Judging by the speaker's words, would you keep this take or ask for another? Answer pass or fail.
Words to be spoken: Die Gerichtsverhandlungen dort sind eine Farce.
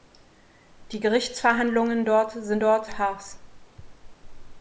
fail